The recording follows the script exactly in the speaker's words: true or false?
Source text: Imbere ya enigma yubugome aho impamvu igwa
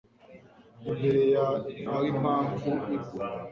false